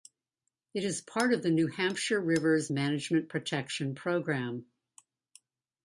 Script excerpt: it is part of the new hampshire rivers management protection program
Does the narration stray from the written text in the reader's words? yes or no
no